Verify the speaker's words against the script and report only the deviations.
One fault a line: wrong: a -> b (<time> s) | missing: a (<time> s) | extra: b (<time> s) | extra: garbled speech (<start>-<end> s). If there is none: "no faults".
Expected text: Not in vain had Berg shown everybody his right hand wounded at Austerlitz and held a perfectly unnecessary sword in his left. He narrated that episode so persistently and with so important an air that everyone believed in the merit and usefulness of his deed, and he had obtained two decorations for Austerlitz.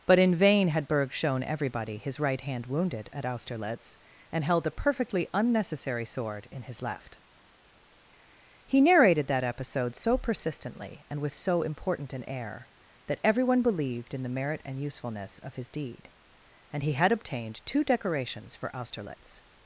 wrong: Not -> But (0.1 s)